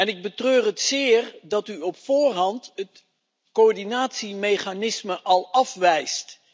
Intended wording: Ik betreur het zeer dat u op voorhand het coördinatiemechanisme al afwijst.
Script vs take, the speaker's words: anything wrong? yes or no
no